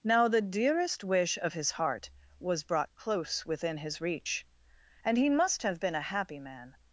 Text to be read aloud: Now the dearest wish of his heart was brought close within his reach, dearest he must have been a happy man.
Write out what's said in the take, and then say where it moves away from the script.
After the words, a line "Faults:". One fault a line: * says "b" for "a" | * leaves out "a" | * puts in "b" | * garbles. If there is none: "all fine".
Now the dearest wish of his heart was brought close within his reach, and he must have been a happy man.
Faults:
* says "and" for "dearest"